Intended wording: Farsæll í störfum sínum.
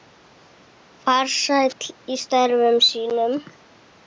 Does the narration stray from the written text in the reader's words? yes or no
no